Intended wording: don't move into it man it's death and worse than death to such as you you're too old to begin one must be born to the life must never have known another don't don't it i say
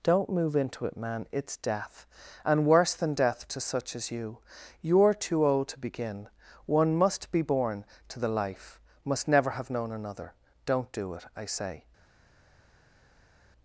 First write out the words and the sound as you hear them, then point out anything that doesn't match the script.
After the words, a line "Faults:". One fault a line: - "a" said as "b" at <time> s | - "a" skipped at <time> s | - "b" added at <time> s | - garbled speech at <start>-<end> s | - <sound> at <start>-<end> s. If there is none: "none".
don't move into it man it's death and worse than death to such as you you're too old to begin one must be born to the life must never have known another don't do it i say
Faults:
- "don't" said as "do" at 10.9 s